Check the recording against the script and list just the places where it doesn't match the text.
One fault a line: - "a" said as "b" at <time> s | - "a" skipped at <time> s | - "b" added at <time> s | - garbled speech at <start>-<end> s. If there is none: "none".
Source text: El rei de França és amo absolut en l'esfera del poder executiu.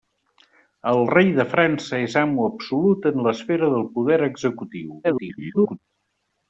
- garbled speech at 5.0-5.8 s